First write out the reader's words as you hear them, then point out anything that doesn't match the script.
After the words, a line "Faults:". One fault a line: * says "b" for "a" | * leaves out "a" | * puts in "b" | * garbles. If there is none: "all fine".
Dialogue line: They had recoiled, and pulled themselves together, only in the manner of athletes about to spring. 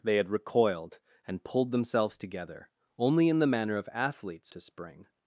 They had recoiled, and pulled themselves together, only in the manner of athletes to spring.
Faults:
* leaves out "about"